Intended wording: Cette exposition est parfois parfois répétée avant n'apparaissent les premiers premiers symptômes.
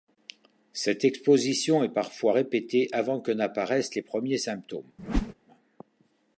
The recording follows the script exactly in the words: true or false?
false